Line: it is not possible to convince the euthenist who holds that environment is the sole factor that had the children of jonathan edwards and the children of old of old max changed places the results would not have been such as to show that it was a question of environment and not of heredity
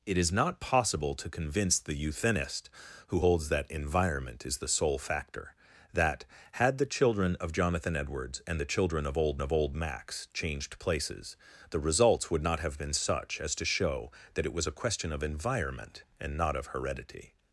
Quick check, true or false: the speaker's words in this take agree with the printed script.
true